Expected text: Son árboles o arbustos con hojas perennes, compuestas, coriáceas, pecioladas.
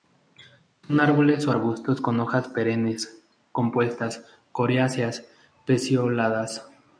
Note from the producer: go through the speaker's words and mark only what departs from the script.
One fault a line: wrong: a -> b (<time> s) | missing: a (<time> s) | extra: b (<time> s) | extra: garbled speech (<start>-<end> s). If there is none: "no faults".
no faults